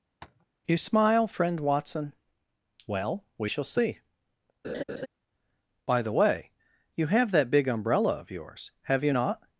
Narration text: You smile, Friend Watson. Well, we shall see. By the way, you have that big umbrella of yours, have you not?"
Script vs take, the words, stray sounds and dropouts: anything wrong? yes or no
yes